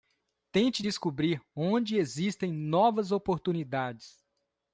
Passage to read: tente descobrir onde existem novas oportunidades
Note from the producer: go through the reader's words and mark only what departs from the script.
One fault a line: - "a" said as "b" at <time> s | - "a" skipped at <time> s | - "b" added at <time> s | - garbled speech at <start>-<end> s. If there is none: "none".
none